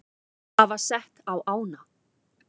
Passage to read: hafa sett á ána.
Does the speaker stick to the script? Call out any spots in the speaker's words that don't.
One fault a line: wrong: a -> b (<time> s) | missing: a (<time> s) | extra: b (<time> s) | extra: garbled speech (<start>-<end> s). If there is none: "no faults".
no faults